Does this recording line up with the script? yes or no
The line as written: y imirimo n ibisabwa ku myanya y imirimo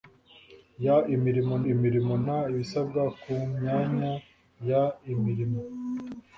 no